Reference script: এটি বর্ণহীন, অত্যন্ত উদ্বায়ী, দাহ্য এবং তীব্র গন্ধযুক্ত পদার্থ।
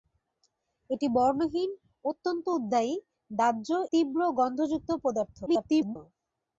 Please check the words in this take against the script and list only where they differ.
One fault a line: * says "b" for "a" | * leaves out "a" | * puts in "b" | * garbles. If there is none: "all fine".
* leaves out "এবং"
* garbles